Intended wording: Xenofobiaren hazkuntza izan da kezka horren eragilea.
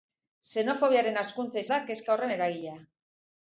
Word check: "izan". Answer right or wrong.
wrong